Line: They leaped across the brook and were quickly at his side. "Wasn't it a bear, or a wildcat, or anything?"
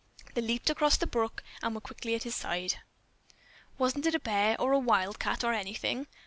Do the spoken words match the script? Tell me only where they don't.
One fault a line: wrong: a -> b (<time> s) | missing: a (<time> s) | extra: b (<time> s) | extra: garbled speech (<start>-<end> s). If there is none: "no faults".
no faults